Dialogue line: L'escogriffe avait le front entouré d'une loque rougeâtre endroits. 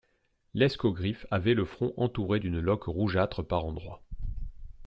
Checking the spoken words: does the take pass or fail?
fail